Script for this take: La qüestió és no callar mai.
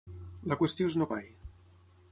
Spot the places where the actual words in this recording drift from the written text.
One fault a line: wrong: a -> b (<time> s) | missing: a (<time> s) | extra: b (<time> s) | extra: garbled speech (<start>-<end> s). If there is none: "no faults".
missing: callar (1.1 s)